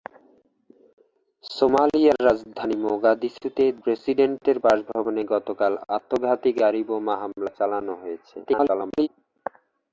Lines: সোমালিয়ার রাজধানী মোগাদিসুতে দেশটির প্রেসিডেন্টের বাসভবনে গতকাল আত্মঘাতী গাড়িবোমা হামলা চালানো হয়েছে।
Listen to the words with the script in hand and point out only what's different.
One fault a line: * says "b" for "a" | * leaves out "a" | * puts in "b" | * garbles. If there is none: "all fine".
* leaves out "দেশটির"
* garbles